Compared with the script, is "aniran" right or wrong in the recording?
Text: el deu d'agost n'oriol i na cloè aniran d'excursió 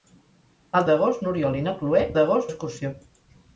wrong